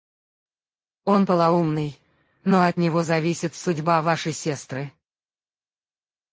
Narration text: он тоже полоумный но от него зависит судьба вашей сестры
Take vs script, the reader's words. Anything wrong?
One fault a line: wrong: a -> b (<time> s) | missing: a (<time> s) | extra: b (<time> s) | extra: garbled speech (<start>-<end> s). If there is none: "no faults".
missing: тоже (1.3 s)